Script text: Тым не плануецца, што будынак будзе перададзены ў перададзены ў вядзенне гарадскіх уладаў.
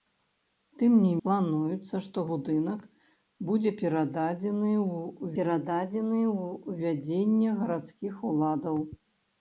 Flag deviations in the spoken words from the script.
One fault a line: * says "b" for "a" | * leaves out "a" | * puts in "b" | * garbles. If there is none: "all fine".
all fine